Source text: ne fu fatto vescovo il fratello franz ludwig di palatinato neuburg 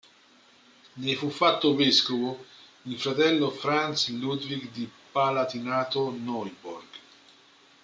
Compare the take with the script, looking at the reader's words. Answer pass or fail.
pass